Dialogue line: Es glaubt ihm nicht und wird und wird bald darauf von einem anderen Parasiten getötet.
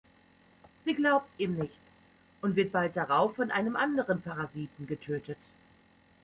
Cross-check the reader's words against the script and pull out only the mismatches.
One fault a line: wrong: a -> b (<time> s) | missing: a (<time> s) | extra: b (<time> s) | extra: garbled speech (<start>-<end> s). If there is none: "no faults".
wrong: Es -> Sie (0.8 s)
missing: und wird (2.7 s)